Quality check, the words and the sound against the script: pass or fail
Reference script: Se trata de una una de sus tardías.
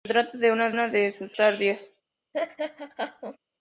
fail